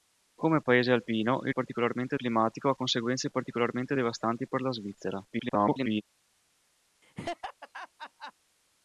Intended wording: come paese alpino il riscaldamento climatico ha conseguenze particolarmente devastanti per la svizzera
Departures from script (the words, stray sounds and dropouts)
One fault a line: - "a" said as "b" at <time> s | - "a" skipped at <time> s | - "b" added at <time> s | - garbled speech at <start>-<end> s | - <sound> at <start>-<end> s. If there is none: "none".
- "riscaldamento" said as "particolarmente" at 1.5 s
- garbled speech at 5.3-6.0 s
- laugh at 7.0-8.3 s